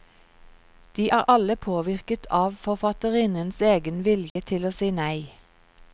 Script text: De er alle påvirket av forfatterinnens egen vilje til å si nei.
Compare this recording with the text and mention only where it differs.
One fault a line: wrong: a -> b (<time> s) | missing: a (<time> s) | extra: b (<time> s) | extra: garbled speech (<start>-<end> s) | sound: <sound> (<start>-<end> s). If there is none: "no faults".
sound: dropout (4.3-4.4 s)